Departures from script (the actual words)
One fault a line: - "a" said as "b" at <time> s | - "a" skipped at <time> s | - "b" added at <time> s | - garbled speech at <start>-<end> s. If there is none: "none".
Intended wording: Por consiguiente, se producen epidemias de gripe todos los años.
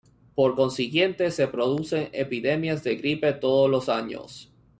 none